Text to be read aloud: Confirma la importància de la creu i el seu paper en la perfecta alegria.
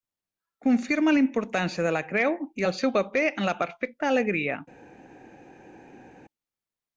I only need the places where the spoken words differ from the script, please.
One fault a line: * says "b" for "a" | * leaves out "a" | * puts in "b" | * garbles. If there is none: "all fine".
all fine